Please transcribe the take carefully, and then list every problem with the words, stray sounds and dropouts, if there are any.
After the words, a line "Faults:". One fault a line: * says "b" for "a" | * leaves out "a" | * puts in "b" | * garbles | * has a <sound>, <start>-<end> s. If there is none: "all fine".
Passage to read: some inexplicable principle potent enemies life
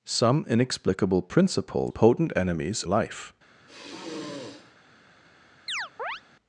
some inexplicable principle potent enemies life
Faults:
* has a sigh, 3.6-4.8 s
* has a chirp, 5.7-6.2 s